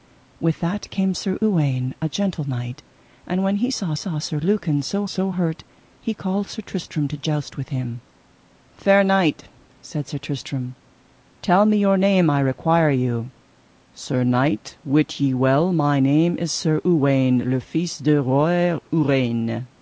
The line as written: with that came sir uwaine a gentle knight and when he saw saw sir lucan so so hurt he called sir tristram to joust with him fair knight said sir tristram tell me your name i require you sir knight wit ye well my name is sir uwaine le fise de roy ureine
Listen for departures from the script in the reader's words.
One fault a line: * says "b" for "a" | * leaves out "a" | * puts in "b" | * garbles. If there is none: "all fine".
all fine